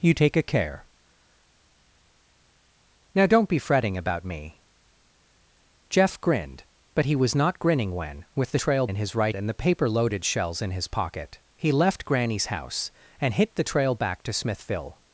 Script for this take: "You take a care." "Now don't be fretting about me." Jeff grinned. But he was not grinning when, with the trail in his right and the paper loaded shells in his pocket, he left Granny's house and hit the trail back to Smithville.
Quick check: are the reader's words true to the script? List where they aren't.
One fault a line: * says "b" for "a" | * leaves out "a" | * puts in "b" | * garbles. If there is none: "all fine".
all fine